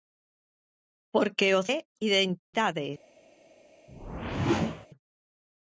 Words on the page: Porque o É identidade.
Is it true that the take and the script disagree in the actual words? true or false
false